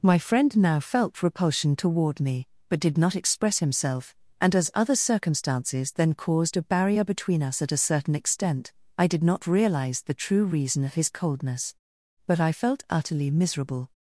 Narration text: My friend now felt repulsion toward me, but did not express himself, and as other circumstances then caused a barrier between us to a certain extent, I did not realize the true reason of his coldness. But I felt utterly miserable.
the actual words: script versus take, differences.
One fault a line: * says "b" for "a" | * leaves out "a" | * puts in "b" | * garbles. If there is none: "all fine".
* says "at" for "to"